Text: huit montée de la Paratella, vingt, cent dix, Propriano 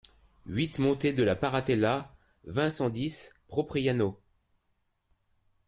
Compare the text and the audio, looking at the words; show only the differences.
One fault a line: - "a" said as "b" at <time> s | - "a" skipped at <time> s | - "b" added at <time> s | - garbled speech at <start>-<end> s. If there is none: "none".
none